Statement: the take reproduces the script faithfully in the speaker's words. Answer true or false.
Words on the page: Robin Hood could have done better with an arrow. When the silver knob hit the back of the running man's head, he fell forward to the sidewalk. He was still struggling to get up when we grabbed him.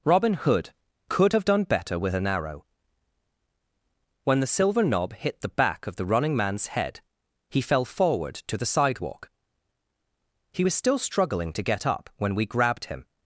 true